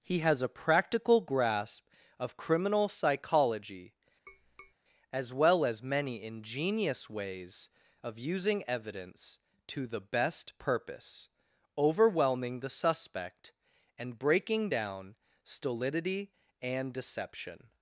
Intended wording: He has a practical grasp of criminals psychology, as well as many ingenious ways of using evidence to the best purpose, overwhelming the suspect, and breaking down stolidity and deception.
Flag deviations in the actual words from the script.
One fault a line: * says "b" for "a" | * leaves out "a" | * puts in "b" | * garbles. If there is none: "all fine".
* says "criminal" for "criminals"